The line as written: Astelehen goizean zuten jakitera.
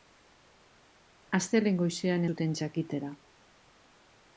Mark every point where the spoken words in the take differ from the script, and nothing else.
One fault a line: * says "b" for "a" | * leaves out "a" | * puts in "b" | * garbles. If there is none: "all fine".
all fine